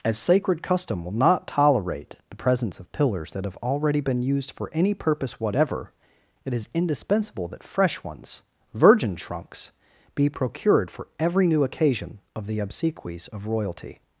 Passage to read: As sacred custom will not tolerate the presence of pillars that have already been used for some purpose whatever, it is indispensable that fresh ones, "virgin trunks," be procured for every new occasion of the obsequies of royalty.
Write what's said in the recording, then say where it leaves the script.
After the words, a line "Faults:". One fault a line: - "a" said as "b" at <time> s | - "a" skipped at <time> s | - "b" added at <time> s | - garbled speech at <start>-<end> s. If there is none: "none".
As sacred custom will not tolerate the presence of pillars that have already been used for any purpose whatever, it is indispensable that fresh ones, "virgin trunks," be procured for every new occasion of the obsequies of royalty.
Faults:
- "some" said as "any" at 4.7 s